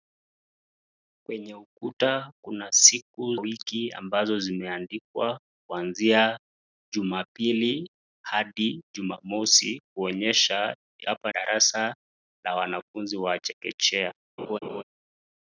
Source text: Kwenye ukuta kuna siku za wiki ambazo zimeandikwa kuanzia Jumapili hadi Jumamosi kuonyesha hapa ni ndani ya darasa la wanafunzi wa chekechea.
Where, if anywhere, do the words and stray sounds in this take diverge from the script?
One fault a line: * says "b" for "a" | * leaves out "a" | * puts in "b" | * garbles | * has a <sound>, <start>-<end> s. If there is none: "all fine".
* leaves out "za"
* leaves out "ni ndani ya"
* has a laugh, 14.4-14.8 s